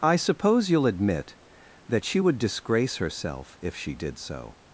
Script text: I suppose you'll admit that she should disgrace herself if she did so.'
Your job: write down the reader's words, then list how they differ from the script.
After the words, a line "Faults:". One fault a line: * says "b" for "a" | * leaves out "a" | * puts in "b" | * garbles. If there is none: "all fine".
I suppose you'll admit that she would disgrace herself if she did so.'
Faults:
* says "would" for "should"